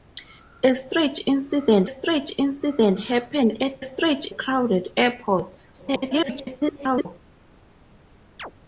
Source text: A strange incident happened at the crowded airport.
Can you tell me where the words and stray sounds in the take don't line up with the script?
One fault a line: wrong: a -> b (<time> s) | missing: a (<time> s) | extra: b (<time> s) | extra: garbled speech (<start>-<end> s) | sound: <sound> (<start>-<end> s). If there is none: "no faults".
extra: strange incident (1.9 s)
wrong: the -> strange (3.8 s)
extra: garbled speech (5.7-7.2 s)
sound: chirp (8.4-8.5 s)